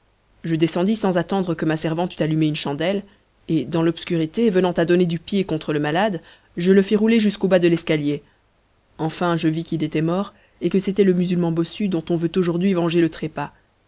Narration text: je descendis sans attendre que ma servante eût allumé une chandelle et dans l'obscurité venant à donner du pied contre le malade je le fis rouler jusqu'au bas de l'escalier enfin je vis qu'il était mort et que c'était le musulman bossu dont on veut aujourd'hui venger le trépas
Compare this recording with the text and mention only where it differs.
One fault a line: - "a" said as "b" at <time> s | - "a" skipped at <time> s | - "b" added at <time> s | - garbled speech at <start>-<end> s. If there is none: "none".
none